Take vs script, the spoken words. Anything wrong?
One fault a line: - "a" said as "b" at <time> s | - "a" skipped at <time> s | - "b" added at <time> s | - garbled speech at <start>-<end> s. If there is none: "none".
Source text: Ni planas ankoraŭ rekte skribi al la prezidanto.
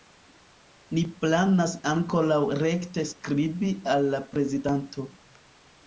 none